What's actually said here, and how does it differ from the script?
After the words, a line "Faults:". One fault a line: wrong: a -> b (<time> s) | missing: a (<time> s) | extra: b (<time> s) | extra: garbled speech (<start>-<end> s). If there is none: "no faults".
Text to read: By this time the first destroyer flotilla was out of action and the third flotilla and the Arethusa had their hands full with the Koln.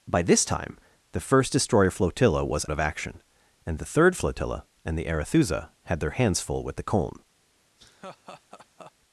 By this time the first destroyer flotilla was of action and the third flotilla and the Arethusa had their hands full with the Koln.
Faults:
missing: out (2.6 s)